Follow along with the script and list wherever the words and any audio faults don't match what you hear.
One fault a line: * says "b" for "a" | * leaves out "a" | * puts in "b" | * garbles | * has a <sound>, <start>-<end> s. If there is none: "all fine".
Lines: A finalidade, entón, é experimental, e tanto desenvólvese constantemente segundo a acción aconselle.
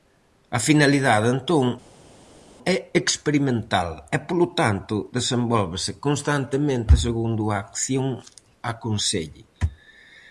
* puts in "polo"